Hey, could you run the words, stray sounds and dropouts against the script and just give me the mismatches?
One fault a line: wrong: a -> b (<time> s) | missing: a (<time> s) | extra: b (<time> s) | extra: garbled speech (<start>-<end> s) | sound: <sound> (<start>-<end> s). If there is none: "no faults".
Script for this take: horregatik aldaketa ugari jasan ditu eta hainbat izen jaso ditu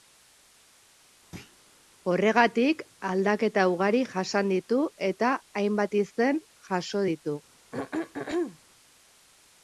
sound: thud (1.3-1.6 s)
sound: throat clearing (7.7-8.6 s)